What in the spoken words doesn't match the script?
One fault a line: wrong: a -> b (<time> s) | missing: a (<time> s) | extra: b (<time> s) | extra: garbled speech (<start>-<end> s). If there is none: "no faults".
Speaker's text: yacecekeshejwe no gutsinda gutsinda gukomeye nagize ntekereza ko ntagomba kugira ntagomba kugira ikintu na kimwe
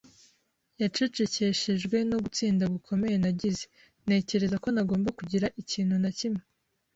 missing: gutsinda (2.6 s)
missing: ntagomba kugira (5.5 s)